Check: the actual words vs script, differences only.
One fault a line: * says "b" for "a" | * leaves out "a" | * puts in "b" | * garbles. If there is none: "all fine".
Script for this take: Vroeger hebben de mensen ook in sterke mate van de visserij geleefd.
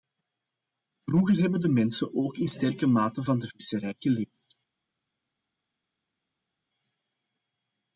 all fine